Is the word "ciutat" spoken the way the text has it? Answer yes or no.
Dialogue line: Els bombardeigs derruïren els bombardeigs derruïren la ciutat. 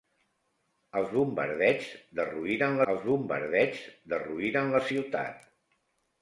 yes